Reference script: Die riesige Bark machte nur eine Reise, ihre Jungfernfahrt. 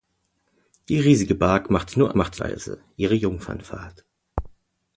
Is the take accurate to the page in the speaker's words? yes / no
no